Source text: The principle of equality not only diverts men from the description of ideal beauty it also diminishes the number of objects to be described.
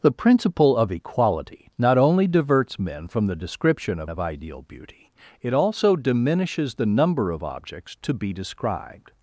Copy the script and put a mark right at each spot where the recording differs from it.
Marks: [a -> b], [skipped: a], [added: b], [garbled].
The principle of equality not only diverts men from the description of [added: of] ideal beauty it also diminishes the number of objects to be described.